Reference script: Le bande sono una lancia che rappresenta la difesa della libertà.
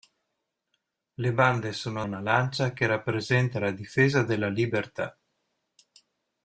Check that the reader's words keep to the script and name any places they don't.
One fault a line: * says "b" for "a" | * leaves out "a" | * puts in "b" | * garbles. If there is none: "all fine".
all fine